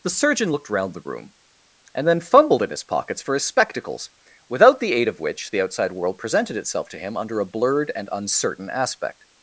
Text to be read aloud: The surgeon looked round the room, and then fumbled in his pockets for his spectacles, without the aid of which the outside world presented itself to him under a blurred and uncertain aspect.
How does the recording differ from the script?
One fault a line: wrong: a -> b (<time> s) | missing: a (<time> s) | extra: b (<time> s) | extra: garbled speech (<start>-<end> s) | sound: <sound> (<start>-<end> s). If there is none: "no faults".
no faults